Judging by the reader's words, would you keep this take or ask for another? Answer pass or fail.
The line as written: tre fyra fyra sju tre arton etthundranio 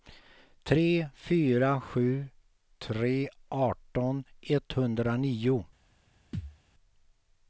fail